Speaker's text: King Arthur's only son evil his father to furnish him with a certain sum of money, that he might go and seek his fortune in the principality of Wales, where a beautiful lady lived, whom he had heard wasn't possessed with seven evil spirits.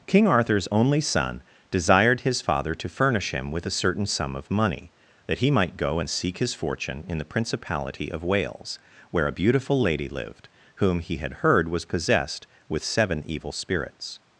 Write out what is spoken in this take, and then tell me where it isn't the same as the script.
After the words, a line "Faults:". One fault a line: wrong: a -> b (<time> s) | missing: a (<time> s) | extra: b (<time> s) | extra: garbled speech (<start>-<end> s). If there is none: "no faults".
King Arthur's only son desired his father to furnish him with a certain sum of money, that he might go and seek his fortune in the principality of Wales, where a beautiful lady lived, whom he had heard was possessed with seven evil spirits.
Faults:
wrong: evil -> desired (1.7 s)
wrong: wasn't -> was (11.7 s)